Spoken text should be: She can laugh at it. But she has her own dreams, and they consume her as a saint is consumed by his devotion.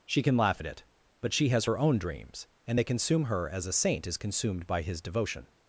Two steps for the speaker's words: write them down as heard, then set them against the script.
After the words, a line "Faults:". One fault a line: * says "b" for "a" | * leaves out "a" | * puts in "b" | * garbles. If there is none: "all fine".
She can laugh at it. But she has her own dreams, and they consume her as a saint is consumed by his devotion.
Faults:
all fine